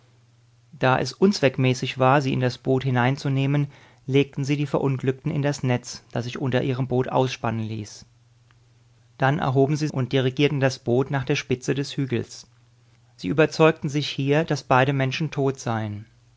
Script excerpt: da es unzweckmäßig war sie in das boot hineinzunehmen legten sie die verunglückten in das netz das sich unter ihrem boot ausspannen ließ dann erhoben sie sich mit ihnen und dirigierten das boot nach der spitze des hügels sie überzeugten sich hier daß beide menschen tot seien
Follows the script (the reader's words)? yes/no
no